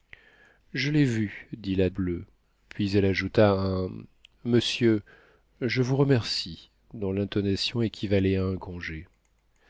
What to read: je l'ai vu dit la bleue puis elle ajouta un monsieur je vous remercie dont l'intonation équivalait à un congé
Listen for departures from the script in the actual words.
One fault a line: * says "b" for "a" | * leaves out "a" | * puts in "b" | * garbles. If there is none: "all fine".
all fine